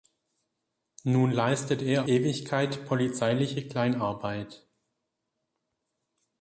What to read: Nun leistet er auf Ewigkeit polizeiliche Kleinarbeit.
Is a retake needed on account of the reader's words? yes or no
yes